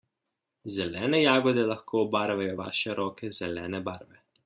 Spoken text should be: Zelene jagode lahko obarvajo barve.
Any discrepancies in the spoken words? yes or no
yes